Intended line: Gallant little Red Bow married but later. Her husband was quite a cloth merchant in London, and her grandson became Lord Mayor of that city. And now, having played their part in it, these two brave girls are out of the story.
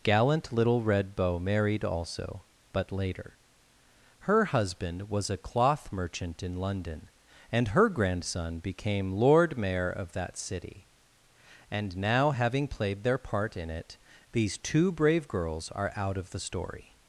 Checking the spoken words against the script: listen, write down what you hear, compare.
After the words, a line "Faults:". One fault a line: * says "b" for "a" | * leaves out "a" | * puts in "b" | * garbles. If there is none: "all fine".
Gallant little Red Bow married also, but later. Her husband was a cloth merchant in London, and her grandson became Lord Mayor of that city. And now, having played their part in it, these two brave girls are out of the story.
Faults:
* puts in "also"
* leaves out "quite"